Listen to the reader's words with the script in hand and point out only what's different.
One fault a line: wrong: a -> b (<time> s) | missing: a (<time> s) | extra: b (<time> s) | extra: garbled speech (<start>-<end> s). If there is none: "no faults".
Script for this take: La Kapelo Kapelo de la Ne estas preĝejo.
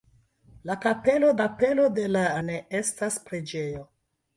no faults